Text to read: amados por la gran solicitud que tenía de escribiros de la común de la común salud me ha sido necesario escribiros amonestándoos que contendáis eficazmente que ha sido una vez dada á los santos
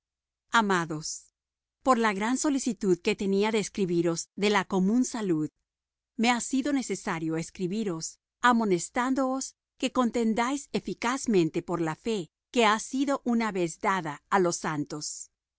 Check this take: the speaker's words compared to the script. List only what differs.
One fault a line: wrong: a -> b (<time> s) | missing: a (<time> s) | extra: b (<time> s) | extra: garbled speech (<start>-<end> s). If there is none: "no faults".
missing: de la común (5.0 s)
extra: por la fe (11.6 s)